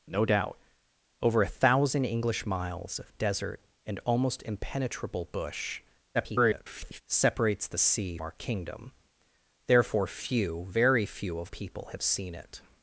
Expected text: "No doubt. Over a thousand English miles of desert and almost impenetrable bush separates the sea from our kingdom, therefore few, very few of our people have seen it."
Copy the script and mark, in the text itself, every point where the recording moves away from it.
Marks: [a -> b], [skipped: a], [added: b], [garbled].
"No doubt. Over a thousand English miles of desert and almost impenetrable bush [garbled] separates the sea [skipped: from] our kingdom, therefore few, very few of [skipped: our] people have seen it."